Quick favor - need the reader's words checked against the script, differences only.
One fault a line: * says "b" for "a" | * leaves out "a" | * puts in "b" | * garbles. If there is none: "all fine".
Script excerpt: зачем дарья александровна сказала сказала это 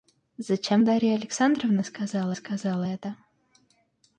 all fine